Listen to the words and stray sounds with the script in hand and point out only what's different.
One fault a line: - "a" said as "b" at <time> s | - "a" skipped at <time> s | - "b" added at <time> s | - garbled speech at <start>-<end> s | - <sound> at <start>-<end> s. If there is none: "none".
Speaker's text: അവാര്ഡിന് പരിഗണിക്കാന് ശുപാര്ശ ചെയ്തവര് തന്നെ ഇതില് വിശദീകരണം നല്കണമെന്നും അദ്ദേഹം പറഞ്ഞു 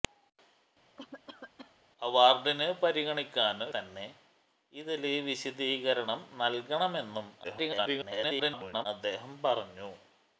- cough at 1.0-1.8 s
- "ശുപാര്ശ ചെയ്തവര്" skipped at 3.7 s
- garbled speech at 7.4-8.9 s